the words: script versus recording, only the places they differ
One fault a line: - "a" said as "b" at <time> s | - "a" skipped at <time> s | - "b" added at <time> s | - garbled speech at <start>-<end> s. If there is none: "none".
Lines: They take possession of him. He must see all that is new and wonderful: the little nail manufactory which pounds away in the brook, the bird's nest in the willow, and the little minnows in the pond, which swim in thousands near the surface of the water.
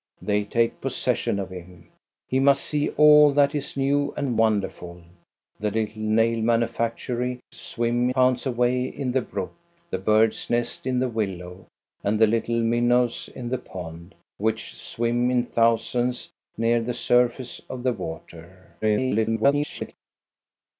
- "which" said as "swim" at 7.5 s
- garbled speech at 18.8-19.9 s